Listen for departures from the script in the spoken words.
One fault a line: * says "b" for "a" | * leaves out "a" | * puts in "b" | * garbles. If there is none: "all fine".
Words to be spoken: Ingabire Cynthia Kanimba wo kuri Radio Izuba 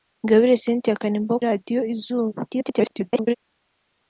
* leaves out "kuri"
* garbles